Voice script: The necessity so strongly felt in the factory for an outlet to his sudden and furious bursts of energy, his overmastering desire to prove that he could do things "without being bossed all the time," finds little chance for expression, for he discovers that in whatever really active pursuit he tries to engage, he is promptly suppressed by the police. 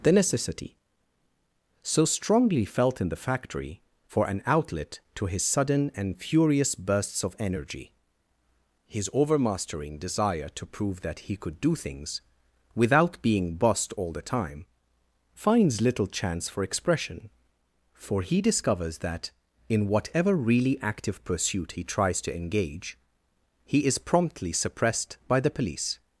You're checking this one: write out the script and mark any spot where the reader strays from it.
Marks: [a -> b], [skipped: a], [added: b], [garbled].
The necessity so strongly felt in the factory for an outlet to his sudden and furious bursts of energy, his overmastering desire to prove that he could do things "without being bossed all the time," finds little chance for expression, for he discovers that in whatever really active pursuit he tries to engage, he is promptly suppressed by the police.